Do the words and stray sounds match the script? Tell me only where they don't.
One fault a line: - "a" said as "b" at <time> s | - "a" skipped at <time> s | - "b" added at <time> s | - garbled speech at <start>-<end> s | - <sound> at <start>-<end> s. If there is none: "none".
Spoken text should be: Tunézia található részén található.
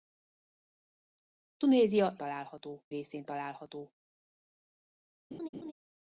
- laugh at 5.3-5.7 s